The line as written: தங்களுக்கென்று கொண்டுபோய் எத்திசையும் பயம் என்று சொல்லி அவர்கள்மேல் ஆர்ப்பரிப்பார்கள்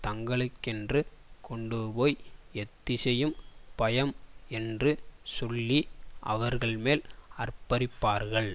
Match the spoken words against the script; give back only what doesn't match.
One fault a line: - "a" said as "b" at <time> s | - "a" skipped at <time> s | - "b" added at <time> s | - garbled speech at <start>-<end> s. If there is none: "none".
none